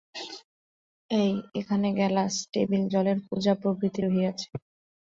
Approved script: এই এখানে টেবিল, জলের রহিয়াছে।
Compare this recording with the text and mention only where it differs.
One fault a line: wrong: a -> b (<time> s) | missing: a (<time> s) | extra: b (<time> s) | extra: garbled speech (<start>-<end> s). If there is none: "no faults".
extra: গেলাস (2.0 s)
extra: কুঁজা প্রভৃতি (3.3 s)